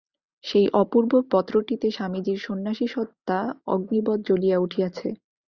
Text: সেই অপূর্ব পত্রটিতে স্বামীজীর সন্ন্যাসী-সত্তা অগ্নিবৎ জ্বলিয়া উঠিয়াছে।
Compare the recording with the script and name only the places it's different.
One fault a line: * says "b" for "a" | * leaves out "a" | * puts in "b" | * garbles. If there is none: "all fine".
all fine